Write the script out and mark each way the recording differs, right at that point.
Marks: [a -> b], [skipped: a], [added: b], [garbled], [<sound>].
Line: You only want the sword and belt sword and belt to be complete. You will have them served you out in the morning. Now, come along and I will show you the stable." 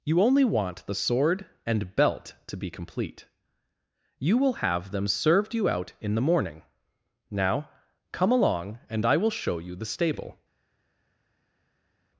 You only want the sword and belt [skipped: sword and belt] to be complete. You will have them served you out in the morning. Now, come along and I will show you the stable."